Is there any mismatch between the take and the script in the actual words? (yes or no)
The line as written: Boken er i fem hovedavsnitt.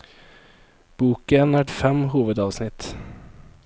no